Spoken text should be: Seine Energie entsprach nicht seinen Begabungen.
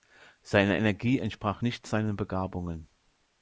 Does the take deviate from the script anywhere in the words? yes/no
no